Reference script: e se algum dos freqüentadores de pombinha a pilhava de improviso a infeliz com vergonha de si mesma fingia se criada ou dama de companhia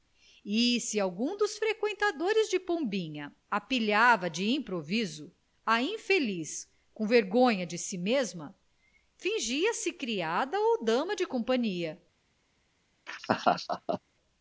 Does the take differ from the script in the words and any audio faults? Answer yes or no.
yes